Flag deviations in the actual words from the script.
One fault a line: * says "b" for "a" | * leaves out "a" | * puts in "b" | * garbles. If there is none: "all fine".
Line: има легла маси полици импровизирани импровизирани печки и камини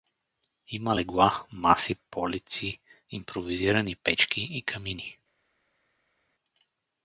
* leaves out "импровизирани"